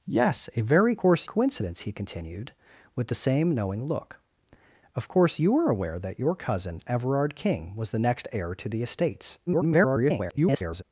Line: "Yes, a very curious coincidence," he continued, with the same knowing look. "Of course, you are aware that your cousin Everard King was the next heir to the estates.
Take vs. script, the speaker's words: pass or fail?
fail